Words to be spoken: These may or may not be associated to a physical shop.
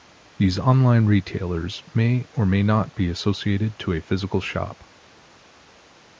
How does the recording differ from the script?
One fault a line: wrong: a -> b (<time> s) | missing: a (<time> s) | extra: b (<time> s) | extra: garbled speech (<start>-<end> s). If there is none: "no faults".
extra: online retailers (0.6 s)